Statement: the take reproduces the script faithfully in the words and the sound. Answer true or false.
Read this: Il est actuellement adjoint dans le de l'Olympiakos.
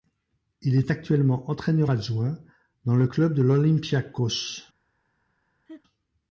false